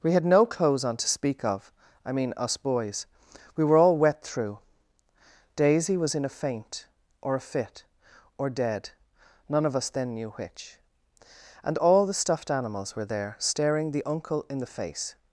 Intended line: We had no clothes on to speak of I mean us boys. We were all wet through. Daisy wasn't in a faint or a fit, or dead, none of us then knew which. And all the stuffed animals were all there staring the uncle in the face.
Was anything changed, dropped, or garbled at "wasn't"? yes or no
yes